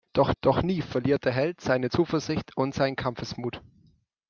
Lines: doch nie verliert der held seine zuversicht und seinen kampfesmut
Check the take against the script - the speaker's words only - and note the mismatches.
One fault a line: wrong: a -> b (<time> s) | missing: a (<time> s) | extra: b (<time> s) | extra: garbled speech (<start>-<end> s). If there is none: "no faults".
extra: doch (0.4 s)